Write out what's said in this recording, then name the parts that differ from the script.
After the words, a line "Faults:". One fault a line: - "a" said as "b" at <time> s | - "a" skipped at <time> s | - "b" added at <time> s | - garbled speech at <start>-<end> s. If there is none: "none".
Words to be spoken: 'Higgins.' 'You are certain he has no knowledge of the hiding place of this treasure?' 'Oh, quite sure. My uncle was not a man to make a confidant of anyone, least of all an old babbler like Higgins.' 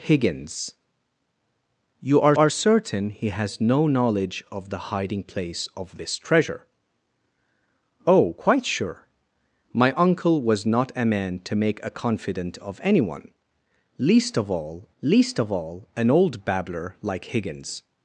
'Higgins.' 'You are are certain he has no knowledge of the hiding place of this treasure?' 'Oh, quite sure. My uncle was not a man to make a confidant of anyone, least of all least of all an old babbler like Higgins.'
Faults:
- "are" added at 2.4 s
- "least of all" added at 15.0 s